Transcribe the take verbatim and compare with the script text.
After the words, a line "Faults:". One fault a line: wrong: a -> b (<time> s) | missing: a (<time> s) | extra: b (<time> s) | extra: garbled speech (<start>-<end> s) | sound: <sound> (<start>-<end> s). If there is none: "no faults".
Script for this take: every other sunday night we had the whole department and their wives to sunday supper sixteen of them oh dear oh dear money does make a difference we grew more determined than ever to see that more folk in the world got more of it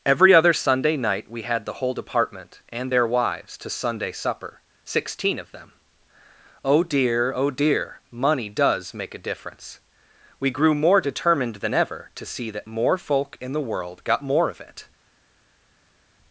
every other sunday night we had the whole department and their wives to sunday supper sixteen of them oh dear oh dear money does make a difference we grew more determined than ever to see that more folk in the world got more of it
Faults:
no faults